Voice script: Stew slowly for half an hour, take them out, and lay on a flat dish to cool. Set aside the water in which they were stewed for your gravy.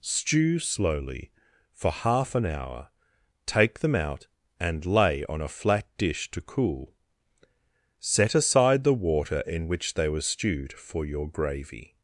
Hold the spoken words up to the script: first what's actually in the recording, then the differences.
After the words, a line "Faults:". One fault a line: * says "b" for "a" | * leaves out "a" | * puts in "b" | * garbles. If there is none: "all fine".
Stew slowly for half an hour, take them out, and lay on a flat dish to cool. Set aside the water in which they were stewed for your gravy.
Faults:
all fine